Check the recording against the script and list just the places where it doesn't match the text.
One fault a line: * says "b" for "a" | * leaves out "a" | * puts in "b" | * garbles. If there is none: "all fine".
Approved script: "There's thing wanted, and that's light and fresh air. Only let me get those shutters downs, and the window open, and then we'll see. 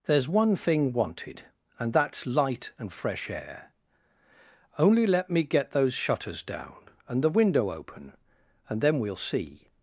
* puts in "one"
* says "down" for "downs"